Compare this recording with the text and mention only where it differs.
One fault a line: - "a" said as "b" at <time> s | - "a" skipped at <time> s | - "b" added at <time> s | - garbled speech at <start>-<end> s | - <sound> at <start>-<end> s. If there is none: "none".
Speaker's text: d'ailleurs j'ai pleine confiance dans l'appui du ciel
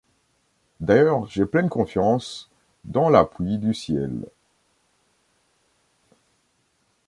none